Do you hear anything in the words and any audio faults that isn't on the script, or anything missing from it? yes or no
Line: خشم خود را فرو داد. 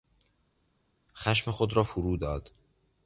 no